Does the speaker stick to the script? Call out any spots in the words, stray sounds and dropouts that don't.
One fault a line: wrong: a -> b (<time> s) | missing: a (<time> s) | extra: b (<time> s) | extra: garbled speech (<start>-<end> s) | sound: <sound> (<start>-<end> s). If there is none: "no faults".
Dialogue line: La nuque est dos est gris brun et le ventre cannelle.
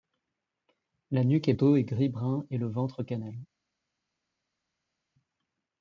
no faults